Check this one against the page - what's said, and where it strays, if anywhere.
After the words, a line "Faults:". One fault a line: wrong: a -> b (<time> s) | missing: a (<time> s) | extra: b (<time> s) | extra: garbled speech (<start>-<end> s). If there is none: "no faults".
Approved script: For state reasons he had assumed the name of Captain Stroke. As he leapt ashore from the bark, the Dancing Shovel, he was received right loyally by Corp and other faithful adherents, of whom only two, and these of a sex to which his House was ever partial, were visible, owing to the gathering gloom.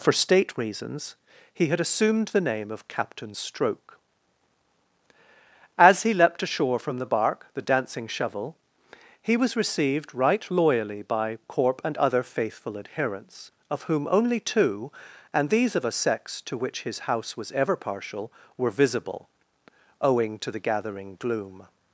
For state reasons he had assumed the name of Captain Stroke. As he leapt ashore from the bark, the Dancing Shovel, he was received right loyally by Corp and other faithful adherents, of whom only two, and these of a sex to which his House was ever partial, were visible, owing to the gathering gloom.
Faults:
no faults